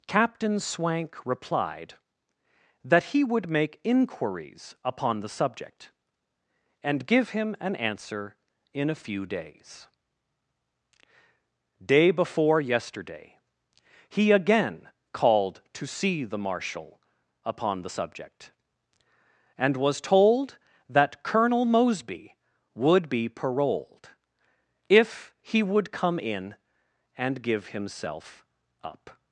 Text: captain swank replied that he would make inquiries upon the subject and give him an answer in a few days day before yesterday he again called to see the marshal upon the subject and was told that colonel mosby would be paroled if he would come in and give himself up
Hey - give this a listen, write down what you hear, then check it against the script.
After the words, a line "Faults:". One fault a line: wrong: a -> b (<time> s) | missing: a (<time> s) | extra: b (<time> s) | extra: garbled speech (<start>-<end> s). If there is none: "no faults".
captain swank replied that he would make inquiries upon the subject and give him an answer in a few days day before yesterday he again called to see the marshal upon the subject and was told that colonel mosby would be paroled if he would come in and give himself up
Faults:
no faults